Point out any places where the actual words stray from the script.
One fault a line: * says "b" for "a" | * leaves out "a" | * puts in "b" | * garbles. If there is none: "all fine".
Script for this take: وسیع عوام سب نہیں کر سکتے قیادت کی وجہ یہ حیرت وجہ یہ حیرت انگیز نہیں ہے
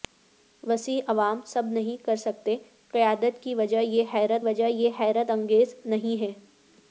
all fine